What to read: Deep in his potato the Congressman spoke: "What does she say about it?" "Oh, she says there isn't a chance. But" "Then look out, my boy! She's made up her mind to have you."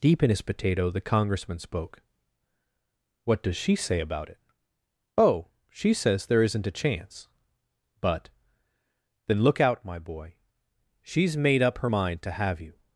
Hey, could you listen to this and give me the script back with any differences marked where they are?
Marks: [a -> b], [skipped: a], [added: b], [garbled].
Deep in his potato the Congressman spoke: "What does she say about it?" "Oh, she says there isn't a chance. But" "Then look out, my boy! She's made up her mind to have you."